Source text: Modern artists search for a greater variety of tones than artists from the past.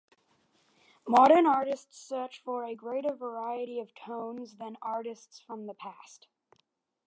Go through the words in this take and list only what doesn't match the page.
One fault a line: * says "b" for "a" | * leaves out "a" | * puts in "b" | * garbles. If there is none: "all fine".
all fine